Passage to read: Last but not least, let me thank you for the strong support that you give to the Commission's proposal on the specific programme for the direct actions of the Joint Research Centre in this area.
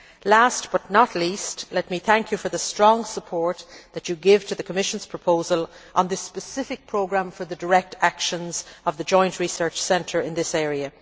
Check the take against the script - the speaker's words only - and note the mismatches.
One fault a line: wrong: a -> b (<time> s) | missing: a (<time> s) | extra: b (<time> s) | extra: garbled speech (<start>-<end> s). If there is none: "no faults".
no faults